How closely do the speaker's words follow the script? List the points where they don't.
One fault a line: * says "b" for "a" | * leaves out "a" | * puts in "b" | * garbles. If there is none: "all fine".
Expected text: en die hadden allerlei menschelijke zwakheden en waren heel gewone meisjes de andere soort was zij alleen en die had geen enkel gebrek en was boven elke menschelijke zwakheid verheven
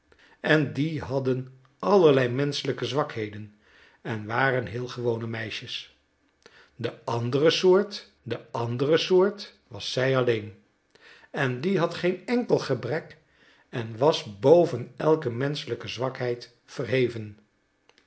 * puts in "de andere soort"